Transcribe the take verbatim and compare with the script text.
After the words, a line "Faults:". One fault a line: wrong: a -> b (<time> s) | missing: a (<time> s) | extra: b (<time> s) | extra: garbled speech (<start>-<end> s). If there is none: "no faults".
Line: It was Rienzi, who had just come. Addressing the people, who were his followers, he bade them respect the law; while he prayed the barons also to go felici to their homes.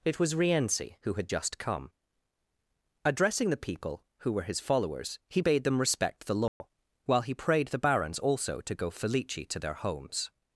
It was Rienzi, who had just come. Addressing the people, who were his followers, he bade them respect the law; while he prayed the barons also to go felici to their homes.
Faults:
no faults